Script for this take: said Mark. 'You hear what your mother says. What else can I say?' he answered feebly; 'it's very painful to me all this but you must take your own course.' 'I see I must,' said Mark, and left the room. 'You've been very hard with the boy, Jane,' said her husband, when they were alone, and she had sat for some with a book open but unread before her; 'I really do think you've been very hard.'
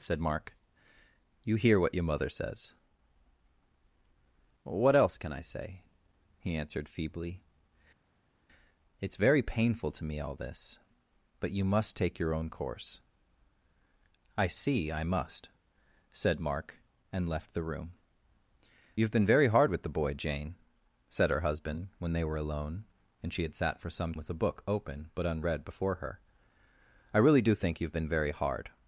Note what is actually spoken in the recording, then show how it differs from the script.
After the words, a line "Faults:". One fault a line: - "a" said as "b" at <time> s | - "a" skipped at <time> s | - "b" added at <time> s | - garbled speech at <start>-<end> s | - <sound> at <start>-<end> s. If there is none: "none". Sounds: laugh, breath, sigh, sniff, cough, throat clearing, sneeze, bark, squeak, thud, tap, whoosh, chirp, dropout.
said Mark. 'You hear what your mother says. What else can I say?' he answered feebly; 'it's very painful to me all this but you must take your own course.' 'I see I must,' said Mark, and left the room. 'You've been very hard with the boy, Jane,' said her husband, when they were alone, and she had sat for some with a book open but unread before her; 'I really do think you've been very hard.'
Faults:
none